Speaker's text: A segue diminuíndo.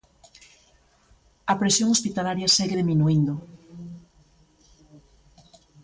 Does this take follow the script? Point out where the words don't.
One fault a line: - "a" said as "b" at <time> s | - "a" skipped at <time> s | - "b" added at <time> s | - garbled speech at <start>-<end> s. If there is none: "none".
- "presión hospitalaria" added at 1.6 s